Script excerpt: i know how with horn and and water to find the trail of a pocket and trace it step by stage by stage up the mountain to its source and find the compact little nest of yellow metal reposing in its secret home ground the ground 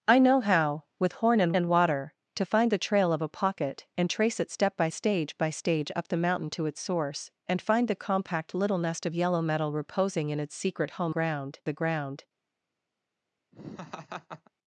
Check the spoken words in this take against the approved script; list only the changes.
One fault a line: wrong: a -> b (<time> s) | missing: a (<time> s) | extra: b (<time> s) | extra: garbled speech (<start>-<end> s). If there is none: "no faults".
no faults